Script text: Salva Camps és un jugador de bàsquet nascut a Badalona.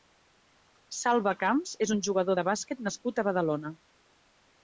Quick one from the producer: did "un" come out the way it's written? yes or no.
yes